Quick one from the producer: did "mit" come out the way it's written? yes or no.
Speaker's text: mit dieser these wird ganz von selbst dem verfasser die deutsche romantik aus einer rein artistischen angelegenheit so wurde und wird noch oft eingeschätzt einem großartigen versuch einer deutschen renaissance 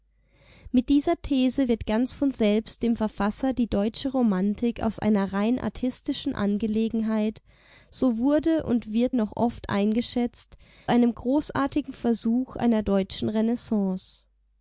yes